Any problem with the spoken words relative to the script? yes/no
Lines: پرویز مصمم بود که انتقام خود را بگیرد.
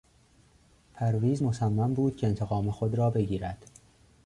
no